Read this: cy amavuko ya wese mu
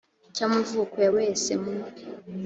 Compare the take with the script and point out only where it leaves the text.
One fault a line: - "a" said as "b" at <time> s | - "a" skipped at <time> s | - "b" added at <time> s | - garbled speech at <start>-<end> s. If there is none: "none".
none